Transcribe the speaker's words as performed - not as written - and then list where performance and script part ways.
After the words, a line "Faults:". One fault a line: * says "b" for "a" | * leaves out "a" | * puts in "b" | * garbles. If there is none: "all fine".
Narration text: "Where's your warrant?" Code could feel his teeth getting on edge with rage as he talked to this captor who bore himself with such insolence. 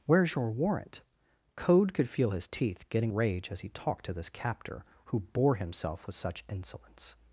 "Where's your warrant?" Code could feel his teeth getting rage as he talked to this captor who bore himself with such insolence.
Faults:
* leaves out "on edge with"